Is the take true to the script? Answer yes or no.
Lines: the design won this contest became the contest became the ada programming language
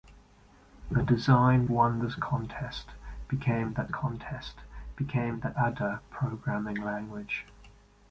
yes